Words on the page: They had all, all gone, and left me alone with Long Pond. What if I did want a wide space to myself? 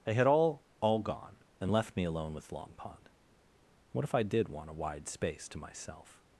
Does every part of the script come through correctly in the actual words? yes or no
yes